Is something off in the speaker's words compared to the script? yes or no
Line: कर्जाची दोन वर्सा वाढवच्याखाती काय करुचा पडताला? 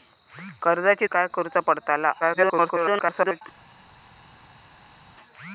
yes